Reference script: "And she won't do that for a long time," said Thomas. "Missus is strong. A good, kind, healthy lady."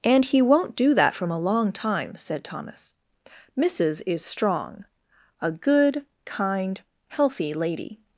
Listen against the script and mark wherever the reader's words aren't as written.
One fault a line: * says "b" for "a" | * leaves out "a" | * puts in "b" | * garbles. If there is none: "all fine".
* says "he" for "she"
* says "from" for "for"